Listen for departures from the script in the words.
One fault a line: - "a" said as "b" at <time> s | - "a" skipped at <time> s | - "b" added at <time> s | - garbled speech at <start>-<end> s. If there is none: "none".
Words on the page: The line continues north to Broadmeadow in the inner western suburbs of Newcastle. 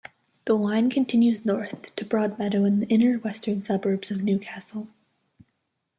none